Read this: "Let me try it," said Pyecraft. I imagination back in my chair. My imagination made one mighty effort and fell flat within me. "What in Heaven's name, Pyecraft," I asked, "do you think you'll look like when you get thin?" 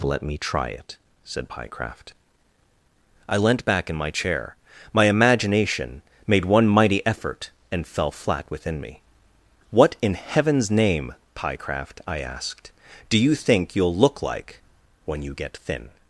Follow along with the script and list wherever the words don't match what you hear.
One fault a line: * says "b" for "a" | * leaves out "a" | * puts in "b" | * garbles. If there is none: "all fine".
* says "leant" for "imagination"